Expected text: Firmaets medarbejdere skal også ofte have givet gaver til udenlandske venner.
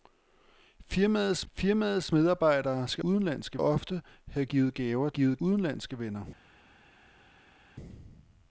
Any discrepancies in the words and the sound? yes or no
yes